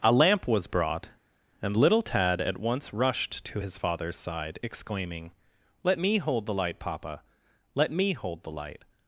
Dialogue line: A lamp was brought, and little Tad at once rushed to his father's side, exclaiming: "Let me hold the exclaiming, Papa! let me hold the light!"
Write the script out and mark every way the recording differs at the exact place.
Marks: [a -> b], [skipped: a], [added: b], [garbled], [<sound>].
A lamp was brought, and little Tad at once rushed to his father's side, exclaiming: "Let me hold the [exclaiming, -> light] Papa! let me hold the light!"